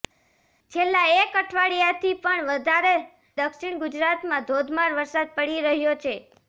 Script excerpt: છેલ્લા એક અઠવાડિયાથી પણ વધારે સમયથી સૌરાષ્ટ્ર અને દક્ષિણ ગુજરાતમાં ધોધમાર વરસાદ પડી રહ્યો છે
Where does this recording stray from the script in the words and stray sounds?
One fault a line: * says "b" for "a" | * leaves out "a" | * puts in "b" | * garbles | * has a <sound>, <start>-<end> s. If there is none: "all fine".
* leaves out "સમયથી સૌરાષ્ટ્ર અને"